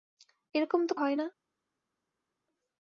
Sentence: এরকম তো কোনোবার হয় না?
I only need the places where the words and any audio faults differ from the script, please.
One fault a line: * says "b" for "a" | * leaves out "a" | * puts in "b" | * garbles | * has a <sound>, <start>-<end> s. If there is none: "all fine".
* leaves out "কোনোবার"